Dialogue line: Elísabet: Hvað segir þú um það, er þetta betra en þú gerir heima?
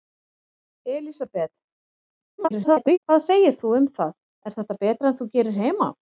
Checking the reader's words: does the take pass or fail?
fail